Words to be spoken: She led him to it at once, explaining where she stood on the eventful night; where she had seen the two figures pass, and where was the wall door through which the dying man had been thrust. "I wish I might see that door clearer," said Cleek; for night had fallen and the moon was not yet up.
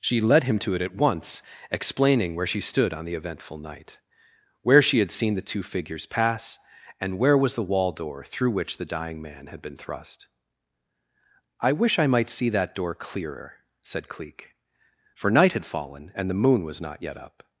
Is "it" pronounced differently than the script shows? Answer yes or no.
no